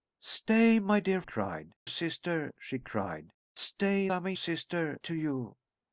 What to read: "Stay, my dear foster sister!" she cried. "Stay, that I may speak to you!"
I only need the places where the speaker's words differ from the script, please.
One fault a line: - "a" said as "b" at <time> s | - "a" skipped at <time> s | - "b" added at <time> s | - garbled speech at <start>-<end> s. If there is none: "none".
- "foster" said as "cried" at 1.2 s
- "that" skipped at 4.1 s
- "speak" said as "sister" at 4.3 s